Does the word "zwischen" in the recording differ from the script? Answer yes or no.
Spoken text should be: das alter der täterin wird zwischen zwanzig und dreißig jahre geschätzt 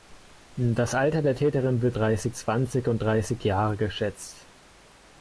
yes